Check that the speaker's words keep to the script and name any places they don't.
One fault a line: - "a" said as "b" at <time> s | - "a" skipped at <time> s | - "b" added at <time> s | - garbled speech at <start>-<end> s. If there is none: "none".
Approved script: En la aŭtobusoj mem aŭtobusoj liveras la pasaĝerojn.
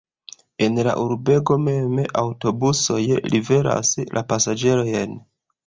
- "aŭtobusoj" said as "urbego" at 1.0 s